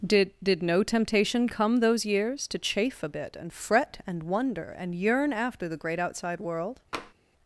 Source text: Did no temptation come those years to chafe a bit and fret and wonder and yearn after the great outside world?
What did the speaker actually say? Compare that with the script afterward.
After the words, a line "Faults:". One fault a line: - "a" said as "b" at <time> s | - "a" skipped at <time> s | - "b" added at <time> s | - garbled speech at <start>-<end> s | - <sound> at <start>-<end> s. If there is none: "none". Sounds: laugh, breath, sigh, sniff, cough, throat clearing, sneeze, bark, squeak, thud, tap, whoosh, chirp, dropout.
Did did no temptation come those years to chafe a bit and fret and wonder and yearn after the great outside world?
Faults:
- "did" added at 0.4 s
- tap at 6.9-7.1 s